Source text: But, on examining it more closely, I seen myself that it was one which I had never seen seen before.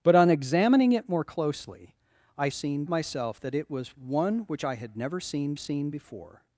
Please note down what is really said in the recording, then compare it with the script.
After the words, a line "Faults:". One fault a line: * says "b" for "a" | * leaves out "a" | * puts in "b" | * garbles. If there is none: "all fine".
But, on examining it more closely, I seen myself that it was one which I had never seen seen before.
Faults:
all fine